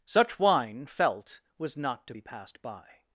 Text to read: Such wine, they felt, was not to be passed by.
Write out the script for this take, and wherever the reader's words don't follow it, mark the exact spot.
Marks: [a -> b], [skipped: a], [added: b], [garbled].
Such wine, [skipped: they] felt, was not to be passed by.